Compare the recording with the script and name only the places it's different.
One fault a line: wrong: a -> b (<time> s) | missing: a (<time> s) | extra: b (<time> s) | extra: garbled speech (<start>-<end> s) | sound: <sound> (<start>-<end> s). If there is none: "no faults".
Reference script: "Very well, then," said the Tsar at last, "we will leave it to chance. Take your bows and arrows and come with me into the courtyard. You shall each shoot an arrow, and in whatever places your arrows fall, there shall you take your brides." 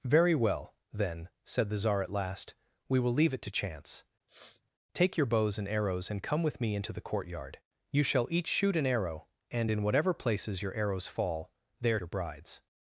sound: sniff (4.3-4.7 s)
missing: shall you take (12.0 s)